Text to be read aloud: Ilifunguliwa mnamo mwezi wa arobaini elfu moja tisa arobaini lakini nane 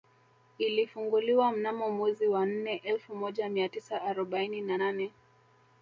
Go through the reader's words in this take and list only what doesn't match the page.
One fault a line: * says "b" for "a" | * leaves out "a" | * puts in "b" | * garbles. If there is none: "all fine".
* says "nne" for "arobaini"
* puts in "mia"
* says "na" for "lakini"